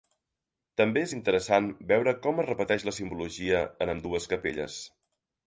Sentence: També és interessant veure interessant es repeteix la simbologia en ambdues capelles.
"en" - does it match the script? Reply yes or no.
yes